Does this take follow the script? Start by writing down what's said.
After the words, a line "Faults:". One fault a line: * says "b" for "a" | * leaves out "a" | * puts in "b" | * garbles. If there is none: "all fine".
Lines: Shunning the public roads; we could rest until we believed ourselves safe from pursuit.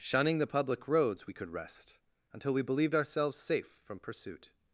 Shunning the public roads; we could rest until we believed ourselves safe from pursuit.
Faults:
all fine